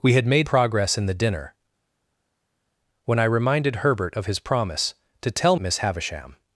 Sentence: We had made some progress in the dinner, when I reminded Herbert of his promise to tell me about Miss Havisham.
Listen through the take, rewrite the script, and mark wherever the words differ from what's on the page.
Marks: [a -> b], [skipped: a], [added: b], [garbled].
We had made [skipped: some] progress in the dinner, when I reminded Herbert of his promise to tell [skipped: me about] Miss Havisham.